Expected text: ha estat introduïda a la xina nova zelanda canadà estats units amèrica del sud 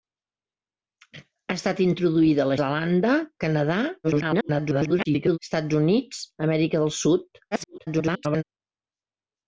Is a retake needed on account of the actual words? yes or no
yes